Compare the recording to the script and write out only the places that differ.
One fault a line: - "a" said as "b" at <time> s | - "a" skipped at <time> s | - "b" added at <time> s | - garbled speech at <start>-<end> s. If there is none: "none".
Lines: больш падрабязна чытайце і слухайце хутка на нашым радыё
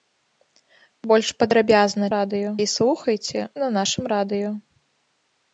- "чытайце" said as "радыё" at 2.2 s
- "хутка" skipped at 3.4 s